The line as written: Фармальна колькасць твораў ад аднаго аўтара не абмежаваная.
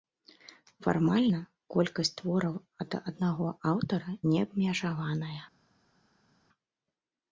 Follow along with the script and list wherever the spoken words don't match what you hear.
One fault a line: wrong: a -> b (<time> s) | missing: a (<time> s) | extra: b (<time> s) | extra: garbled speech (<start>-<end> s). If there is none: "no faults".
no faults